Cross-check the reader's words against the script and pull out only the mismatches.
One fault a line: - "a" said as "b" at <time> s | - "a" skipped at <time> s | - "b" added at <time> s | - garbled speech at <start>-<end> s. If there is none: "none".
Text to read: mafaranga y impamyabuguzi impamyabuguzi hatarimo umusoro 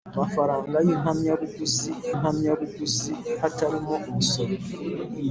none